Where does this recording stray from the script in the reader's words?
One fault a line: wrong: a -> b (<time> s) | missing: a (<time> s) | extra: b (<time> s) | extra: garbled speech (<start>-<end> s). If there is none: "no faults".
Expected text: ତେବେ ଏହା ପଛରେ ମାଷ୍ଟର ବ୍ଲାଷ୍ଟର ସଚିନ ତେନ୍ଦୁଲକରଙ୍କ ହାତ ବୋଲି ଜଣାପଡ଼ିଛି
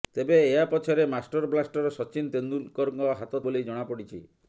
no faults